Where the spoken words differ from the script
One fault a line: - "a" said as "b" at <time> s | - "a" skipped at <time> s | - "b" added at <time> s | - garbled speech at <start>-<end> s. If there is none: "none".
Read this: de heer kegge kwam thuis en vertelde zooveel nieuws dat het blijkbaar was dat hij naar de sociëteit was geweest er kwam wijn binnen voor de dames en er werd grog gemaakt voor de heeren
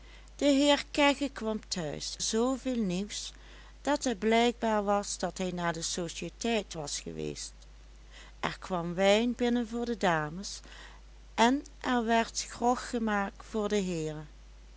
- "en vertelde" skipped at 2.2 s